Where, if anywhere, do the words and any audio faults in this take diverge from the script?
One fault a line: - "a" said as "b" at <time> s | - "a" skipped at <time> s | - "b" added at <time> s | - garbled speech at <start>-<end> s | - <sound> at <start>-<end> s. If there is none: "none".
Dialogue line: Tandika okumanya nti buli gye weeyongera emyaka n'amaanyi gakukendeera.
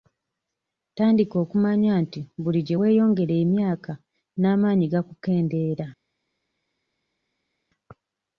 none